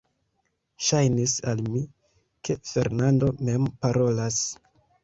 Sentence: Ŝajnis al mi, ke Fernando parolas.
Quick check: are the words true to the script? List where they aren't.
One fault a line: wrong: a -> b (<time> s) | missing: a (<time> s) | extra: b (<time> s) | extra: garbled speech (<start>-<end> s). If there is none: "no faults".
extra: mem (3.5 s)